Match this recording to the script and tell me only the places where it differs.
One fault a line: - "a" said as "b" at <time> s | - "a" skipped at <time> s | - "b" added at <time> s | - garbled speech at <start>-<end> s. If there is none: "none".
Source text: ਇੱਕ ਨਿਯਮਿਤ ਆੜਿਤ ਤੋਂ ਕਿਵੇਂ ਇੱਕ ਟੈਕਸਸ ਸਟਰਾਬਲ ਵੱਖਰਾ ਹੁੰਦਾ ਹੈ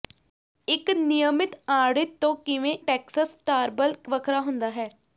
- "ਇੱਕ" skipped at 2.7 s